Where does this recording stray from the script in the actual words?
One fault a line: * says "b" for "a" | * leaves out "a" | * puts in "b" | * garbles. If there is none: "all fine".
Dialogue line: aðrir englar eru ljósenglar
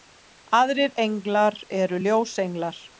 all fine